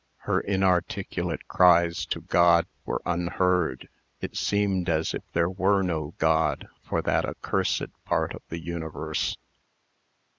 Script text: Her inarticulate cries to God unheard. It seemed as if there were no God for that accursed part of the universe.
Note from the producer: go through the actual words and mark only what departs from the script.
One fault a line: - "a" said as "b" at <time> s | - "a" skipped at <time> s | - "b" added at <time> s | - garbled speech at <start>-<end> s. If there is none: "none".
- "were" added at 2.9 s